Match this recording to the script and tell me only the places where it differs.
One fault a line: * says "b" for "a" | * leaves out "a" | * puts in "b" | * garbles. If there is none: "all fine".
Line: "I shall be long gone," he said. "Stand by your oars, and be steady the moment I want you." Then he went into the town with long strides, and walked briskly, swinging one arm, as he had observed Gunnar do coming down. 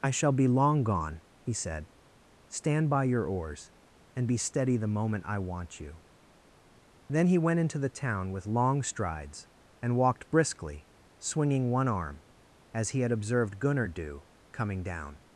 all fine